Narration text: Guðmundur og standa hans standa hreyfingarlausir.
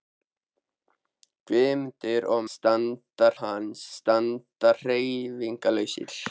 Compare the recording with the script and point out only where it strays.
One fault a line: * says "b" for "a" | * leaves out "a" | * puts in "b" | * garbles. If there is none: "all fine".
all fine